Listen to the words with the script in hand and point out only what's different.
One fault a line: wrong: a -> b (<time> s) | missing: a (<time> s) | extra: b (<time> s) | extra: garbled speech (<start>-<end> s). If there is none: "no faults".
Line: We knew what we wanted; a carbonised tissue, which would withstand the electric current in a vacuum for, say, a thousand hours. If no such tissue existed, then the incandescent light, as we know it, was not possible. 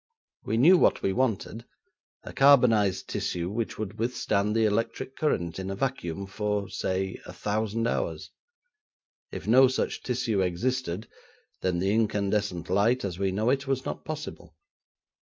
no faults